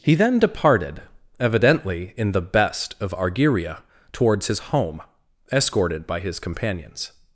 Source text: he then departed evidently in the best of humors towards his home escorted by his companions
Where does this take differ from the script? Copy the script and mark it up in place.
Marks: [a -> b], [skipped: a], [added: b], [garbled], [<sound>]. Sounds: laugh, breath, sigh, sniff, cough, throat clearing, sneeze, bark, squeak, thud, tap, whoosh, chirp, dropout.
he then departed evidently in the best of [humors -> argyria] towards his home escorted by his companions